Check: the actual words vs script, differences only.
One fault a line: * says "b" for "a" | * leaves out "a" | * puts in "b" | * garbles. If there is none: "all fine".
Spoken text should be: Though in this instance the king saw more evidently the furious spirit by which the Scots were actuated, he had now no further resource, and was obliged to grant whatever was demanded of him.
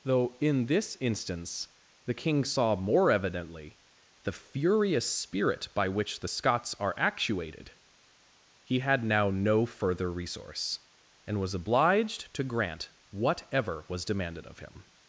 * says "are" for "were"